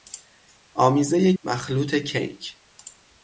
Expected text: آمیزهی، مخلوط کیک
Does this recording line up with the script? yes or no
yes